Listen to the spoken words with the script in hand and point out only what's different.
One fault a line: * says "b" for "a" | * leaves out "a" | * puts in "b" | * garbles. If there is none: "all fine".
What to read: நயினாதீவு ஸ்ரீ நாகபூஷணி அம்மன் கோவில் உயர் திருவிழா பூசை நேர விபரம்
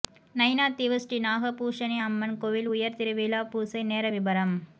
all fine